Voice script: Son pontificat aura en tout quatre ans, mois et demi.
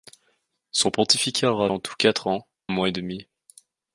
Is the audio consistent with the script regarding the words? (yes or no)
yes